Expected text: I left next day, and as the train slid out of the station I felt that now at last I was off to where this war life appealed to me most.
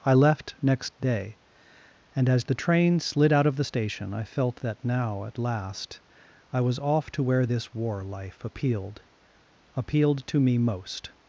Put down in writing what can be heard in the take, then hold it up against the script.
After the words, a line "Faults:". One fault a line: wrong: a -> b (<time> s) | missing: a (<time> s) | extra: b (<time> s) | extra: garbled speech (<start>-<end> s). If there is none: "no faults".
I left next day, and as the train slid out of the station I felt that now at last I was off to where this war life appealed appealed to me most.
Faults:
extra: appealed (9.8 s)